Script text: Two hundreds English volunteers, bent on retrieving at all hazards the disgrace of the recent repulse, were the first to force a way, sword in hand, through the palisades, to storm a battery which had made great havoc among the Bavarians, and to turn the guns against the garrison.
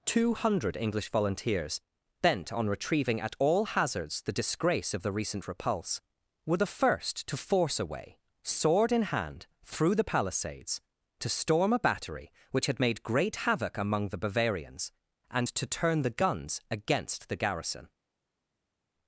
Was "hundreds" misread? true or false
true